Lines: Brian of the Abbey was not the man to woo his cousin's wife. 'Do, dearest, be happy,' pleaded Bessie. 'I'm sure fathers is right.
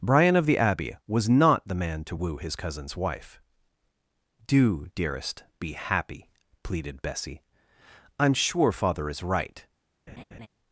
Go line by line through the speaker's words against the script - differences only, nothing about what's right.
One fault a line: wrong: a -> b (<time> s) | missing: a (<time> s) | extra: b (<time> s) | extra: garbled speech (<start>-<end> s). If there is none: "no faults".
wrong: fathers -> father (8.7 s)